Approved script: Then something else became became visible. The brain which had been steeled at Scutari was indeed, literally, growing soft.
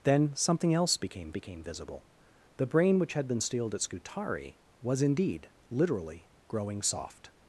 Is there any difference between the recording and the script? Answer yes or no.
no